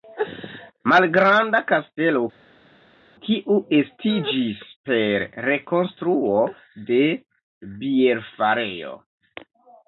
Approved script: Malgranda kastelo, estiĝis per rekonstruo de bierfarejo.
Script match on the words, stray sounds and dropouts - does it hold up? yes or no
no